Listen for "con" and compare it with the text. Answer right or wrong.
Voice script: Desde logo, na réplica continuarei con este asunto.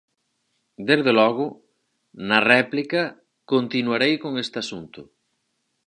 right